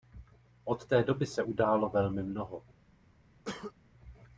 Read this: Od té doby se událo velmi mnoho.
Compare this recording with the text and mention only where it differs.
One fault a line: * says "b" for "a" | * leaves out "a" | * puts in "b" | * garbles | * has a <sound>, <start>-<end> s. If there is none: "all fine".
* has a cough, 3.5-3.7 s